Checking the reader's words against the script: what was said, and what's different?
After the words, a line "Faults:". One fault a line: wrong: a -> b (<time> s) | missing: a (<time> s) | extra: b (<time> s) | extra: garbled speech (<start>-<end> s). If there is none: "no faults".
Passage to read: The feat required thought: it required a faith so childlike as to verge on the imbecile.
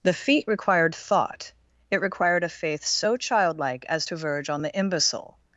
The feat required thought: it required a faith so childlike as to verge on the imbecile.
Faults:
no faults